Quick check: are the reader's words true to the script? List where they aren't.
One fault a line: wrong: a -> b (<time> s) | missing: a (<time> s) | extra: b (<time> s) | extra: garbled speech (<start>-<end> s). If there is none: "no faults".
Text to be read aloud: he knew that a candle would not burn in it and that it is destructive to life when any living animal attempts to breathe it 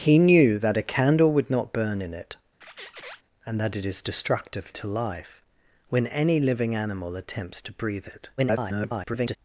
extra: garbled speech (8.4-9.4 s)